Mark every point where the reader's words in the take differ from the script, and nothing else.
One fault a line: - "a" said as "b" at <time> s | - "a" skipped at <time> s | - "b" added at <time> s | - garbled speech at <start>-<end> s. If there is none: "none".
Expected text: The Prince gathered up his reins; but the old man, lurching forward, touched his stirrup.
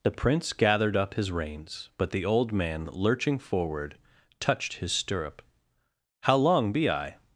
- "How long be I" added at 6.2 s